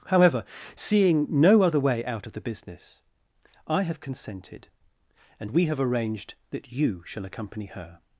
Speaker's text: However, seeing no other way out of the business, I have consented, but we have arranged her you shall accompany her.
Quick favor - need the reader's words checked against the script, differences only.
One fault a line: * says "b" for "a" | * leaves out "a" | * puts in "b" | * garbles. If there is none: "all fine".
* says "and" for "but"
* says "that" for "her"